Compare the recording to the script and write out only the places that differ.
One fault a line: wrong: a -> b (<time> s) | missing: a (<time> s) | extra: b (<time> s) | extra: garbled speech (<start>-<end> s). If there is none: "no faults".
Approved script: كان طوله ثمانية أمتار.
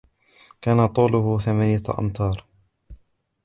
no faults